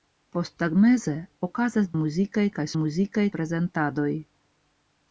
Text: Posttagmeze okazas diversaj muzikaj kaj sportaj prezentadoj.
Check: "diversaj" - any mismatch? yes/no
yes